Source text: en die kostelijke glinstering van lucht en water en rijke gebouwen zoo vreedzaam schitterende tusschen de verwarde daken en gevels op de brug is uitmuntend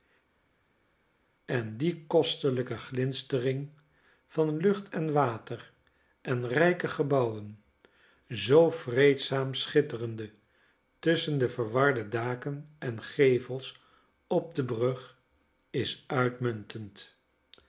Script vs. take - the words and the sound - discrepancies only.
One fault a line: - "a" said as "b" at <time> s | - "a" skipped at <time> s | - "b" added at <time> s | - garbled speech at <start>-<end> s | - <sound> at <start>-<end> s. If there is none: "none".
none